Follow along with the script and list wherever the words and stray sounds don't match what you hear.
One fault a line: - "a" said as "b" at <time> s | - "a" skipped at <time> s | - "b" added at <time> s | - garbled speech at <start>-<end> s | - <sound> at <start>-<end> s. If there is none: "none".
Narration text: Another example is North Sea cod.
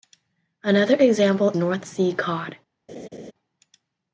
- "is" skipped at 1.5 s
- laugh at 2.9-3.3 s